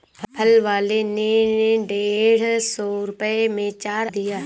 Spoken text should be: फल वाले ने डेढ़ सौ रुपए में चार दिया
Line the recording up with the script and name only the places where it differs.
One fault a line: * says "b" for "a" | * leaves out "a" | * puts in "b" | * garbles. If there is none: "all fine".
all fine